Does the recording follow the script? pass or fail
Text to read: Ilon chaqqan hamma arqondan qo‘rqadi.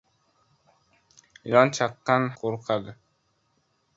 fail